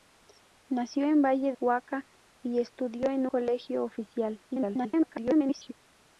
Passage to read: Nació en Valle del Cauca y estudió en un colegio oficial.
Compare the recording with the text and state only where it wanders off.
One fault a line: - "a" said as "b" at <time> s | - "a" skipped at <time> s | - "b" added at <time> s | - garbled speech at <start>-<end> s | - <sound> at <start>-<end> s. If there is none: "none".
- "del" skipped at 1.5 s
- "un" skipped at 3.3 s
- garbled speech at 4.5-5.7 s